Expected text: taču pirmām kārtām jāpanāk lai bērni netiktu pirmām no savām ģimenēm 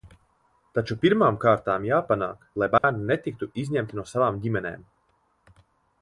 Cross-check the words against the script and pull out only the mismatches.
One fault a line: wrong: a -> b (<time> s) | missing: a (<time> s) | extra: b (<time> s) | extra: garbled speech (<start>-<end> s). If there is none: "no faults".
wrong: pirmām -> izņemti (3.6 s)